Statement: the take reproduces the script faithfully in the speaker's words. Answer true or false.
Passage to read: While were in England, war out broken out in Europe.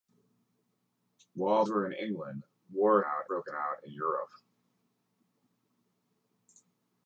true